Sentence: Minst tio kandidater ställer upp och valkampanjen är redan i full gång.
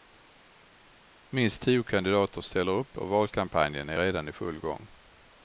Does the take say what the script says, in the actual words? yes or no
yes